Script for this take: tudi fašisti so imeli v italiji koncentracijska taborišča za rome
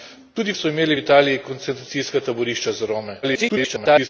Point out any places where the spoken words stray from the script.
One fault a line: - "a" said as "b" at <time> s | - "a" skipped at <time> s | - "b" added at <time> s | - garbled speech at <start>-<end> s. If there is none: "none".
- "fašisti" skipped at 0.5 s
- garbled speech at 3.2-4.1 s